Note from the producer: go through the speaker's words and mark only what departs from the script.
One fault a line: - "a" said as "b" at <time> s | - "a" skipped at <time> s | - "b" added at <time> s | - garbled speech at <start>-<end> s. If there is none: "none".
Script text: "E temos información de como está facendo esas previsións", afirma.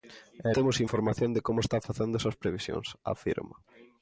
none